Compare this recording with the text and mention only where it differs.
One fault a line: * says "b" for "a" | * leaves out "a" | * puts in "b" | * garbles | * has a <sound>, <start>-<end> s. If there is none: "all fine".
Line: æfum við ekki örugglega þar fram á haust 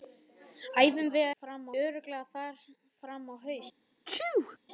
* says "fram" for "ekki"
* has a sneeze, 4.1-4.6 s